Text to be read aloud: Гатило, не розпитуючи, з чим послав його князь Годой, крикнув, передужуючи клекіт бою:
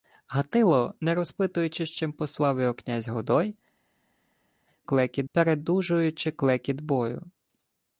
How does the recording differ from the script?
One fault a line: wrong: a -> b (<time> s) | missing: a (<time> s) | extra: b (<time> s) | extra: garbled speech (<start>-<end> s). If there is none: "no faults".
wrong: крикнув -> клекіт (4.8 s)